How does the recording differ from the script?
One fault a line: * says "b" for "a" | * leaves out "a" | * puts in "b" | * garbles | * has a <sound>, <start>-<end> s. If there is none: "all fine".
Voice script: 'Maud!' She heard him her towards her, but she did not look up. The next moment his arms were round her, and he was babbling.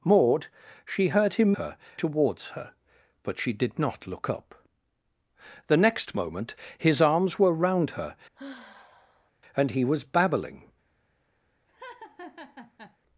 * has a sigh, 8.3-9.3 s
* has a laugh, 11.7-13.0 s